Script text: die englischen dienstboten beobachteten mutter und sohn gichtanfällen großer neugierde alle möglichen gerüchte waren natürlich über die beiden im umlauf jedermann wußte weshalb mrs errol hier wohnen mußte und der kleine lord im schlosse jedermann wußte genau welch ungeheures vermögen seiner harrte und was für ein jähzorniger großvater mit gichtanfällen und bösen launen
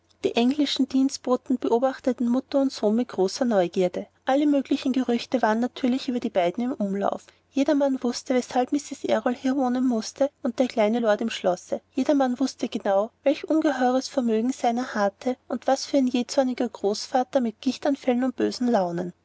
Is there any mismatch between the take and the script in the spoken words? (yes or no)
yes